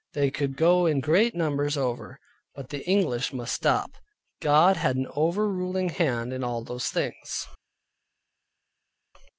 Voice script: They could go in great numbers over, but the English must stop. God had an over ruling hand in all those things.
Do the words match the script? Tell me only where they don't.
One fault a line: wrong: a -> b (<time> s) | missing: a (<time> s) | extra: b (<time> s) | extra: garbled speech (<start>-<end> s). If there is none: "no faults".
no faults